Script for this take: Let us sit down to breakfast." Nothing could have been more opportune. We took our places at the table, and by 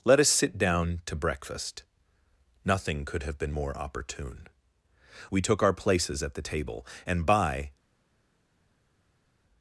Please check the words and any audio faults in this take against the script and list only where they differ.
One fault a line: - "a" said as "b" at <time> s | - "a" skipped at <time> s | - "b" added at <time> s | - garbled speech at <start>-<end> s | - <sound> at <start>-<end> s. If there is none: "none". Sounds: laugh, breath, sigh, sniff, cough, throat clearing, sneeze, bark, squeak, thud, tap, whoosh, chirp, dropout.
none